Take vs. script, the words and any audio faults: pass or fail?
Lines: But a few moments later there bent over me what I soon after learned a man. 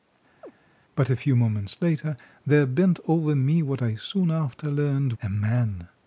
fail